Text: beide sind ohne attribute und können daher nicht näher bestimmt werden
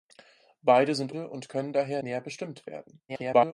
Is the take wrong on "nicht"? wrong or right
wrong